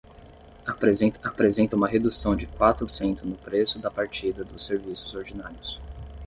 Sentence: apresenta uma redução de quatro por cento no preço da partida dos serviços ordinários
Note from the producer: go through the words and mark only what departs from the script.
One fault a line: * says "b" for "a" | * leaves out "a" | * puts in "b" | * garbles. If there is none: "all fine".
* puts in "apresenta"
* leaves out "por"